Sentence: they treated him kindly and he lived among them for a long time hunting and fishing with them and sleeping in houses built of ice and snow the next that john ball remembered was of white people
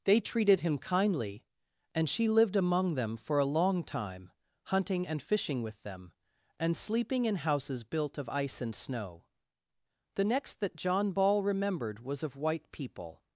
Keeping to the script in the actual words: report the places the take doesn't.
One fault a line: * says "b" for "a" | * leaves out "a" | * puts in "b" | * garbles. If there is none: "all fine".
* says "she" for "he"